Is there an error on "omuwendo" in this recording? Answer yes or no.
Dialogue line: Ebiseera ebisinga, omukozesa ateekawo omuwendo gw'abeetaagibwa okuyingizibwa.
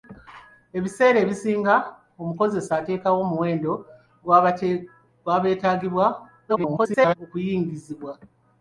no